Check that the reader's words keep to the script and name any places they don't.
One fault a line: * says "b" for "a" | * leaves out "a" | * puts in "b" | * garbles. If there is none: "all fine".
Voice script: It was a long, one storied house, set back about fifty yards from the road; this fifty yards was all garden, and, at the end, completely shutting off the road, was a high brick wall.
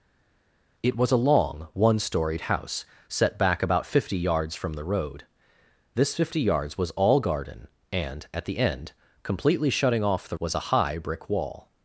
* leaves out "road"